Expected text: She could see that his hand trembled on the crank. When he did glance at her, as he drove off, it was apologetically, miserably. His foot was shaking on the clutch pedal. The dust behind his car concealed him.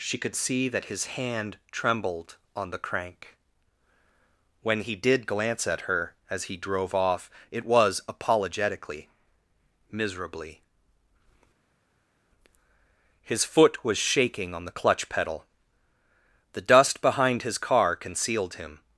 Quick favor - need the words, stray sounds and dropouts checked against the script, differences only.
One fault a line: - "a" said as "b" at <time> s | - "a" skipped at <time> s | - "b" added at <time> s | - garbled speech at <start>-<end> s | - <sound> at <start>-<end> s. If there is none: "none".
none